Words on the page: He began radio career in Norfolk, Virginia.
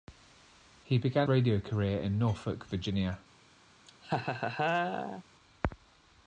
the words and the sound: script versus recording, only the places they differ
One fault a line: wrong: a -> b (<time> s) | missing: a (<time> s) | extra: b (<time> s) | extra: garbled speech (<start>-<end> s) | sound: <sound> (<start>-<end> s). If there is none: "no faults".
sound: laugh (3.9-5.2 s)